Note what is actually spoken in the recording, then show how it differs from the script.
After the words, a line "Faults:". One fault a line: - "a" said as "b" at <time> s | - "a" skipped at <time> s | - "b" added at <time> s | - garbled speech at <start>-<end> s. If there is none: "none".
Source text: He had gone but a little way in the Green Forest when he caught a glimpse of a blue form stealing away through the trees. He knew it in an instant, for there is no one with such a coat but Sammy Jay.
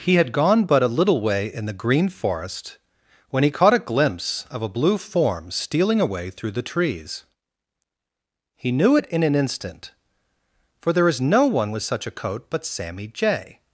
He had gone but a little way in the Green Forest when he caught a glimpse of a blue form stealing away through the trees. He knew it in an instant, for there is no one with such a coat but Sammy Jay.
Faults:
none